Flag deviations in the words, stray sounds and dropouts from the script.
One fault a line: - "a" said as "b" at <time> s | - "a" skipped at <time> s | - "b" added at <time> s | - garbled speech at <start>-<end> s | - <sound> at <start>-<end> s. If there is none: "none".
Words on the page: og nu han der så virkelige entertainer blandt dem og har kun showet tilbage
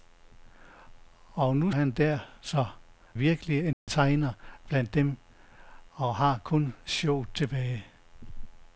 - dropout at 3.7-3.9 s